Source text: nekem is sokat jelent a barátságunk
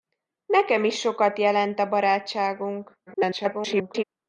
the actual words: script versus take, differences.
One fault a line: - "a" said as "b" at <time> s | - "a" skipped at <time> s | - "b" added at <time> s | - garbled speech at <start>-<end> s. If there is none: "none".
- garbled speech at 3.1-4.0 s